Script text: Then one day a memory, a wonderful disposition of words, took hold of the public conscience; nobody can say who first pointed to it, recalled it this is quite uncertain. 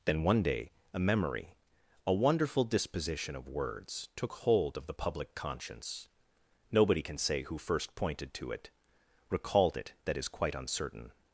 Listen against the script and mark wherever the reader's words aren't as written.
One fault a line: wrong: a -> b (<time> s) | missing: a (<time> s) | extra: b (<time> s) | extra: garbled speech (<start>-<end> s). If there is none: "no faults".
wrong: this -> that (10.1 s)